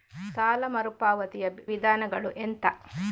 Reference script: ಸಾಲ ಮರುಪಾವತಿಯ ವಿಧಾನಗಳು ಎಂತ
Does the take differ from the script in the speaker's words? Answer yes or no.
no